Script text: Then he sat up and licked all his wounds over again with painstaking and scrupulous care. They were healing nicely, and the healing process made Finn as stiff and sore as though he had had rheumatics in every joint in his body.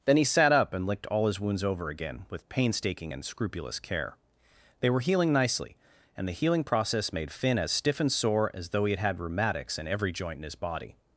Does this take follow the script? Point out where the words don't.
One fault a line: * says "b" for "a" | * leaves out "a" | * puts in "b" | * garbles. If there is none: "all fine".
all fine